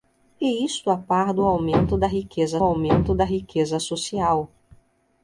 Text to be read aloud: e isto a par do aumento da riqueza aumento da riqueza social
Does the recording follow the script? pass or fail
pass